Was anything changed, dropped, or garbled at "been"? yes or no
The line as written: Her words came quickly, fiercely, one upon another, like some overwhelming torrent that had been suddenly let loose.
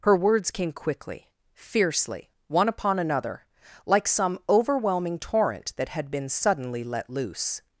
no